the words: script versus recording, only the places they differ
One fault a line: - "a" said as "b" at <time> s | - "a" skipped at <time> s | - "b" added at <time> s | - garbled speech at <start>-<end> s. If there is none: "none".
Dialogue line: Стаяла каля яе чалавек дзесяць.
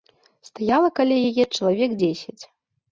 none